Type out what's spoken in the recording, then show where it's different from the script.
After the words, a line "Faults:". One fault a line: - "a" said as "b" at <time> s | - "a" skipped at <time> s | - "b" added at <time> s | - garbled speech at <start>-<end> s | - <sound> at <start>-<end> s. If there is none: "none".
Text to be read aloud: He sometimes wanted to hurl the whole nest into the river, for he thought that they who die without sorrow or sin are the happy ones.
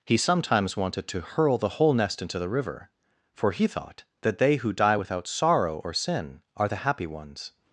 He sometimes wanted to hurl the whole nest into the river, for he thought that they who die without sorrow or sin are the happy ones.
Faults:
none